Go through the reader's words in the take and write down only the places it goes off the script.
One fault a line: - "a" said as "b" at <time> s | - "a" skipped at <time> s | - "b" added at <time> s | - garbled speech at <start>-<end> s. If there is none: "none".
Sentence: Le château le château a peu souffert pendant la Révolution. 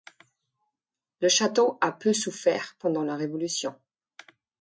- "le château" skipped at 1.8 s